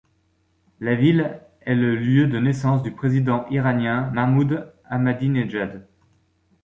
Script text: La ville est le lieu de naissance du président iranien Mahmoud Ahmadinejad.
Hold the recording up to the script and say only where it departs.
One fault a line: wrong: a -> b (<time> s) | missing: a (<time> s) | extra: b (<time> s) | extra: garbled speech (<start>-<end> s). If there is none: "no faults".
no faults